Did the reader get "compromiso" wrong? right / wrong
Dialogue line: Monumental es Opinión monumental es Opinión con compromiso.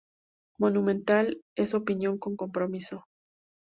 right